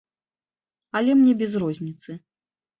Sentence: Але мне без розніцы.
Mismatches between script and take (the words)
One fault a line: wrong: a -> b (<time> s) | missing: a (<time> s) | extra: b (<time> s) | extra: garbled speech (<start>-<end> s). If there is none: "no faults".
no faults